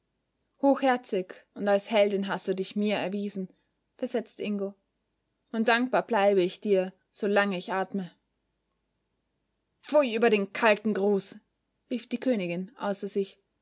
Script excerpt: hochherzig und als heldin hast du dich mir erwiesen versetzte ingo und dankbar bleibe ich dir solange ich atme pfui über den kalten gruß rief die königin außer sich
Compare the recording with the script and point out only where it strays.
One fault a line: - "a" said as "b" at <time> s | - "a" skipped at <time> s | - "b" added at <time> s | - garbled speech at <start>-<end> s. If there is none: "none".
none